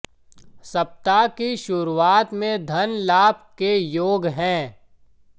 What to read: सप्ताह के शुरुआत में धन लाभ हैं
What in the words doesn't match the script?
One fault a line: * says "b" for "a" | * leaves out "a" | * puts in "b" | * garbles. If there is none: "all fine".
* says "की" for "के"
* puts in "के योग"